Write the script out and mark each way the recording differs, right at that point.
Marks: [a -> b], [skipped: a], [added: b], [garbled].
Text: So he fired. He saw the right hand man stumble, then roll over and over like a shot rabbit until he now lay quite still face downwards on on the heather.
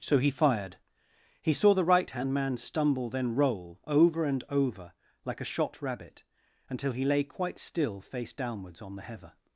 So he fired. He saw the right hand man stumble, then roll over and over like a shot rabbit until he [skipped: now] lay quite still face downwards on [skipped: on] the heather.